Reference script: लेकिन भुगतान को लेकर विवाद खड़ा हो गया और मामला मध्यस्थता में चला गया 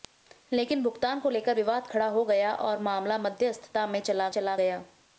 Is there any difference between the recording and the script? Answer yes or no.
yes